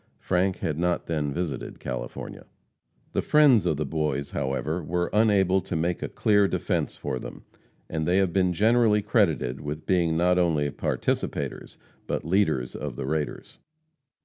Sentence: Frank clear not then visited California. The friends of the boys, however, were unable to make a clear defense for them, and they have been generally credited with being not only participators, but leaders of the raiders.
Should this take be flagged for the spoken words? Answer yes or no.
yes